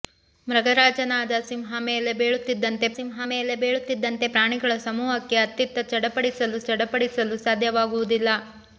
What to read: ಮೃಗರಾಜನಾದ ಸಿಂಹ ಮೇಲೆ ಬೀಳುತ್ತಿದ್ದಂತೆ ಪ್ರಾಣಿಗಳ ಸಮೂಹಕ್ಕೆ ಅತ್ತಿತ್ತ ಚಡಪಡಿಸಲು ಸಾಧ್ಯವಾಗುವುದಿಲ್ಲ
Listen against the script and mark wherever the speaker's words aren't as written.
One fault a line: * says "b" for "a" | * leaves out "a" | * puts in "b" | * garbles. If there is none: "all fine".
* puts in "ಸಿಂಹ ಮೇಲೆ ಬೀಳುತ್ತಿದ್ದಂತೆ"
* puts in "ಚಡಪಡಿಸಲು"